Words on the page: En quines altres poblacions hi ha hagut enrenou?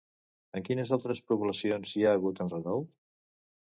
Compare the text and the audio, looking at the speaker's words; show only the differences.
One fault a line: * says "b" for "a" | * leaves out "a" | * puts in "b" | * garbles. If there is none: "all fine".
all fine